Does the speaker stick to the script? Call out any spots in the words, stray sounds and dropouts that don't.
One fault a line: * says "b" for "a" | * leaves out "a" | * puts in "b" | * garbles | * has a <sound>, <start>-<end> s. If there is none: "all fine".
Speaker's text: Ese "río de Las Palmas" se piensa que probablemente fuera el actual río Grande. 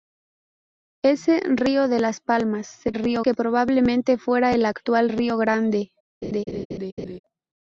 * says "río" for "piensa"
* has a laugh, 6.2-7.2 s